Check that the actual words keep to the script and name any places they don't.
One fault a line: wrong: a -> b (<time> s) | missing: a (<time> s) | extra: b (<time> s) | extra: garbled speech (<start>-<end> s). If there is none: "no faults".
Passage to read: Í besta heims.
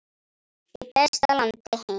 extra: landi (1.4 s)